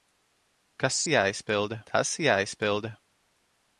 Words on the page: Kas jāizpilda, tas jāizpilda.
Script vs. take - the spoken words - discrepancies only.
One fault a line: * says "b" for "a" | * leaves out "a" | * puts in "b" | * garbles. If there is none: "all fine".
all fine